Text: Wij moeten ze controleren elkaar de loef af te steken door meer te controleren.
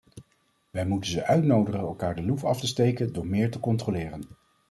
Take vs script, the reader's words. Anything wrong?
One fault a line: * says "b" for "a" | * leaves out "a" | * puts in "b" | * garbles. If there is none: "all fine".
* says "uitnodigen" for "controleren"